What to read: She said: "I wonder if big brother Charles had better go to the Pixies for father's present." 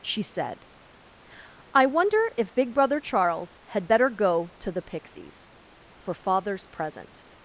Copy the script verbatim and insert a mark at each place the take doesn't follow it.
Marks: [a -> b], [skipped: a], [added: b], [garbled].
She said: "I wonder if big brother Charles had better go to the Pixies for father's present."